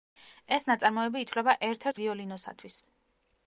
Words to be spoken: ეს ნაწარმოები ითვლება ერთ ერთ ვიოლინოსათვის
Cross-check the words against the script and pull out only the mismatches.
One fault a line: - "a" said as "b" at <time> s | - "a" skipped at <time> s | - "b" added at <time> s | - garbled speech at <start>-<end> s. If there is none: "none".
none